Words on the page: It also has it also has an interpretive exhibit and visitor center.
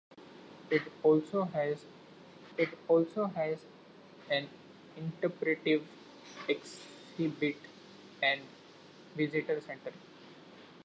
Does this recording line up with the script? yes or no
yes